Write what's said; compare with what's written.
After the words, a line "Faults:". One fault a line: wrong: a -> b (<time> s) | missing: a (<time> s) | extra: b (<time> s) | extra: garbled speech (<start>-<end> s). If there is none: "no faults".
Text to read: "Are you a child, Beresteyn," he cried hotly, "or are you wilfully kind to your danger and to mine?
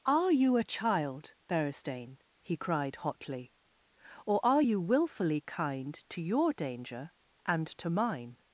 "Are you a child, Beresteyn," he cried hotly, "or are you wilfully kind to your danger and to mine?
Faults:
no faults